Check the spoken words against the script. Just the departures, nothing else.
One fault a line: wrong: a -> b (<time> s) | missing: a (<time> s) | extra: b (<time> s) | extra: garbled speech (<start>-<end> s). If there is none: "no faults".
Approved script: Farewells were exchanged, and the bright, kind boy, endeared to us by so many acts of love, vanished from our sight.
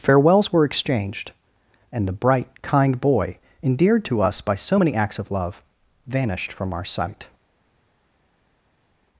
no faults